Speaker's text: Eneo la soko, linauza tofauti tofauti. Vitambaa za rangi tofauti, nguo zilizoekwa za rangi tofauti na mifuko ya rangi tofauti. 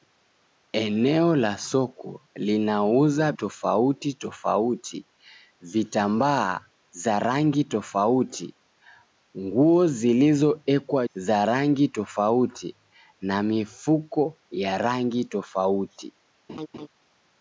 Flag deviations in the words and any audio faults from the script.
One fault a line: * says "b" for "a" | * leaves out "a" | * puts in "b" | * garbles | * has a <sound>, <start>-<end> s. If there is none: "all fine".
* has a laugh, 16.5-16.9 s